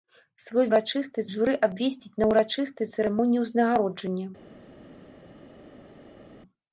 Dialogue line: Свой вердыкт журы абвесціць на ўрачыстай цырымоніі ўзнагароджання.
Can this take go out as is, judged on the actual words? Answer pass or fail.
fail